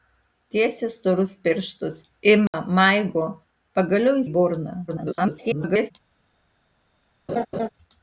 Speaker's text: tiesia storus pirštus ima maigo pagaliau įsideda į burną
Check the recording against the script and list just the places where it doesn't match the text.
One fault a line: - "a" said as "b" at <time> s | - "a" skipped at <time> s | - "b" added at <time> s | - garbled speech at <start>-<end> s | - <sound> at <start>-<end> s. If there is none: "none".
- dropout at 2.5-2.5 s
- "įsideda" skipped at 4.2 s
- garbled speech at 4.9-5.9 s
- laugh at 7.3-7.7 s